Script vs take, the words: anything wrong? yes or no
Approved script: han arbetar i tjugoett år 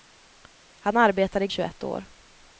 no